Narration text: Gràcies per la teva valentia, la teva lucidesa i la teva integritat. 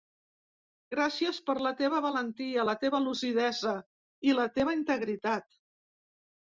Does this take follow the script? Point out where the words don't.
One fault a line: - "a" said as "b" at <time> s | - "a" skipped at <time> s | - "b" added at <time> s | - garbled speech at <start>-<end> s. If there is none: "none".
none